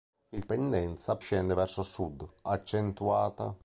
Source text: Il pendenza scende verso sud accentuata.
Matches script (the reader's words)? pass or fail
pass